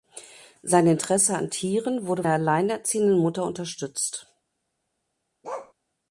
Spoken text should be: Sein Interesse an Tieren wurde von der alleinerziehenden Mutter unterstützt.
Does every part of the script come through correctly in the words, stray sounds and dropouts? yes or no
no